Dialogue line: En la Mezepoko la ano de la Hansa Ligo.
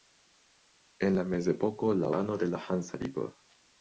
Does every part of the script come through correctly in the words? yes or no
yes